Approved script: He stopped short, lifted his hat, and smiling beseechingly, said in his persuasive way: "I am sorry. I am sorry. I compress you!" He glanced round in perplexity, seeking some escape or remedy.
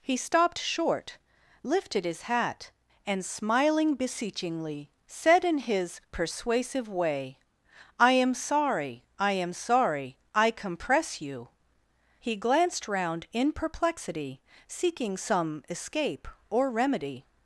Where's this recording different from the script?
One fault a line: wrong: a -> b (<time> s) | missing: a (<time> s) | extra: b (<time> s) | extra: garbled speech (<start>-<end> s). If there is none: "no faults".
no faults